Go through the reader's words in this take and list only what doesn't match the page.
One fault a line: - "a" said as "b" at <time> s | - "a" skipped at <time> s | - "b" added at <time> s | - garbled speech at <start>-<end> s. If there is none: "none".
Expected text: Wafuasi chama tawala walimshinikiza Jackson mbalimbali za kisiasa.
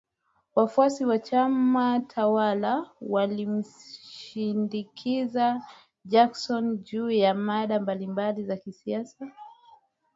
- "wa" added at 1.1 s
- "juu ya mada" added at 6.8 s